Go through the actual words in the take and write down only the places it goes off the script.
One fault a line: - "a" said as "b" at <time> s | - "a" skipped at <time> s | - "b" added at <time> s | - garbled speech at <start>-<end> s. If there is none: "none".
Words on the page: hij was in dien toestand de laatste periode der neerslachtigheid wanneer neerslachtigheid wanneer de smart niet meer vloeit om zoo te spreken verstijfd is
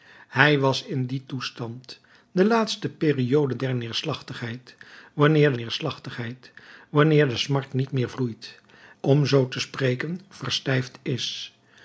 none